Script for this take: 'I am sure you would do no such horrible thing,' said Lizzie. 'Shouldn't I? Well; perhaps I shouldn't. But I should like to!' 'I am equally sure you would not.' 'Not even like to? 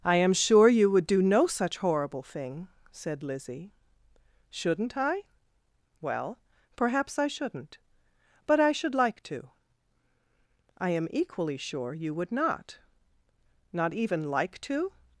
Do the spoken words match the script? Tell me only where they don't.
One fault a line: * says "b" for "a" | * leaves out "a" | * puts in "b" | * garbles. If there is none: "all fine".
all fine